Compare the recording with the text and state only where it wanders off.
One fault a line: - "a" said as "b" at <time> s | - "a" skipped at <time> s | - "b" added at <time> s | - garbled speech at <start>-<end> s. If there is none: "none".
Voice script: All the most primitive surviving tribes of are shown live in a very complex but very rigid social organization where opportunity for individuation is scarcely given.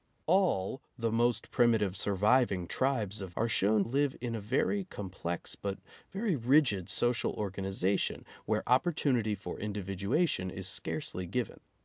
none